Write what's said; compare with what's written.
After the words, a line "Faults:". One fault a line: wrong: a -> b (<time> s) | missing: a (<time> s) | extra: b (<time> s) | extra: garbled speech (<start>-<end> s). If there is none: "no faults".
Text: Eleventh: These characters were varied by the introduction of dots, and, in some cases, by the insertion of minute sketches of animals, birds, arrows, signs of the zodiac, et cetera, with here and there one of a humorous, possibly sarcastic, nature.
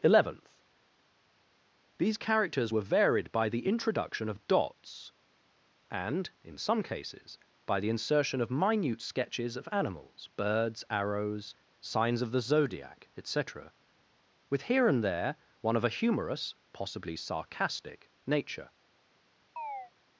Eleventh: These characters were varied by the introduction of dots, and, in some cases, by the insertion of minute sketches of animals, birds, arrows, signs of the zodiac, et cetera, with here and there one of a humorous, possibly sarcastic, nature.
Faults:
no faults